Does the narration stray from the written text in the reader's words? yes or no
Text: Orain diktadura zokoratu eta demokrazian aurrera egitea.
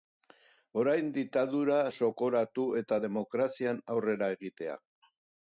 no